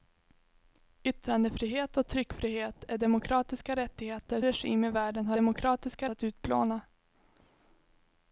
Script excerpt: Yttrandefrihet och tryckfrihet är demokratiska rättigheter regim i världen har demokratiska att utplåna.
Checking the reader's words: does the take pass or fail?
pass